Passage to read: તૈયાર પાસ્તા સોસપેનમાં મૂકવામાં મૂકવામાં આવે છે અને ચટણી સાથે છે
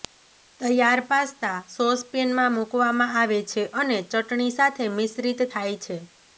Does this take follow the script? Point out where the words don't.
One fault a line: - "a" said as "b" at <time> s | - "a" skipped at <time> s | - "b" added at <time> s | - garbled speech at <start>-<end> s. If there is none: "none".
- "મૂકવામાં" skipped at 3.1 s
- "મિશ્રિત થાય" added at 5.0 s